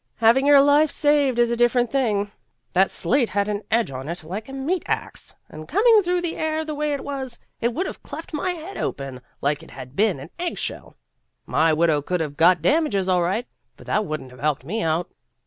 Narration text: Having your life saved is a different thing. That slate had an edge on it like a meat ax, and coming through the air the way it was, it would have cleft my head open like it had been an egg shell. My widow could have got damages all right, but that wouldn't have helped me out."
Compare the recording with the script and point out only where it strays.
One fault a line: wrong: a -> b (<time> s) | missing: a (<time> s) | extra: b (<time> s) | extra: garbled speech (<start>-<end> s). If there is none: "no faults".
no faults